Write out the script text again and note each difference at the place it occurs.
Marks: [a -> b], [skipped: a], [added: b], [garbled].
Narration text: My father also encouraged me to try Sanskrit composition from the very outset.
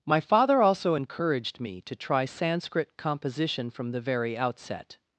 My father also encouraged me to try Sanskrit composition from the very outset.